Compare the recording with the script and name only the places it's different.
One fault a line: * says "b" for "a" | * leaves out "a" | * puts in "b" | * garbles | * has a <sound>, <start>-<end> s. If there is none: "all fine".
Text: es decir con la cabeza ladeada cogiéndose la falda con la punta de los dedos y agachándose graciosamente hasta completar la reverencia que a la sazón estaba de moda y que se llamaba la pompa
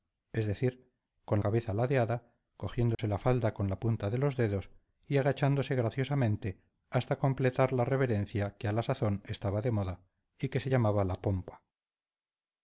* leaves out "la"
* has a dropout, 2.9-3.0 s